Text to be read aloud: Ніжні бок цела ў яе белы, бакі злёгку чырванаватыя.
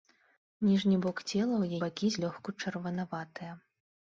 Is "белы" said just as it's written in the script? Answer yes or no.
no